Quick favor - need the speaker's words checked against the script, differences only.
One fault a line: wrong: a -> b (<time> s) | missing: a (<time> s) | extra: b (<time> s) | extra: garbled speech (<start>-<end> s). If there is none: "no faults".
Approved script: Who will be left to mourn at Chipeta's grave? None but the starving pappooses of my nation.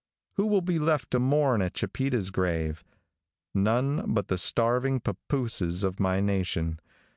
no faults